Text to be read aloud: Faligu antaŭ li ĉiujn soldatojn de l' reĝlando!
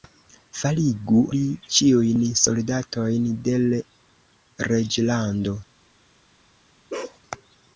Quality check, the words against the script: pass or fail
fail